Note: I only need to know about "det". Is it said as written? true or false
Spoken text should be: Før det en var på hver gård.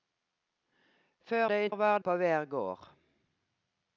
true